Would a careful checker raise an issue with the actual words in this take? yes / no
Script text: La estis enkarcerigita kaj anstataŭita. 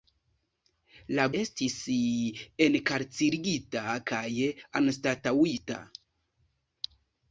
no